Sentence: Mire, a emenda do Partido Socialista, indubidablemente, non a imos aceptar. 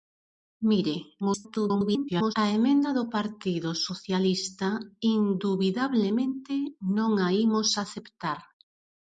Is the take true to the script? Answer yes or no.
no